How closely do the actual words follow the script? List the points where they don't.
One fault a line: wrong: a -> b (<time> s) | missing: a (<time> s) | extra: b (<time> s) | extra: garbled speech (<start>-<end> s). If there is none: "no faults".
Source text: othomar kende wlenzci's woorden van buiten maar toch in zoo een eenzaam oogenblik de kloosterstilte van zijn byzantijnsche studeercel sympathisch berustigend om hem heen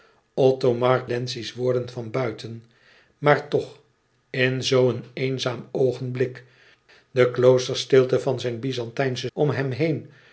missing: kende (1.0 s)
missing: studeercel sympathisch berustigend (9.3 s)